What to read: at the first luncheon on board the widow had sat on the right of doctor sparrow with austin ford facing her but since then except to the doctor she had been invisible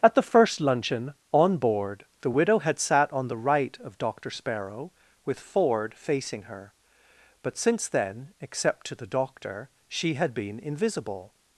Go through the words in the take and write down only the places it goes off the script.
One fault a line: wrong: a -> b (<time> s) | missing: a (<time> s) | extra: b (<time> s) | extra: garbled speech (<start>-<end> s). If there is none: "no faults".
missing: austin (5.4 s)